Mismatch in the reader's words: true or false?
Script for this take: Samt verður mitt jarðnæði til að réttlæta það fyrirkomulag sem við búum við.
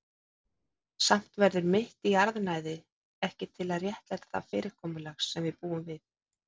true